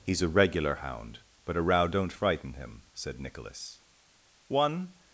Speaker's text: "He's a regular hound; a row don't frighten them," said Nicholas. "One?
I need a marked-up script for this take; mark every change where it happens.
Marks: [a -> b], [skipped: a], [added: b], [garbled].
"He's a regular hound; [added: but] a row don't frighten [them," -> him] said Nicholas. "One?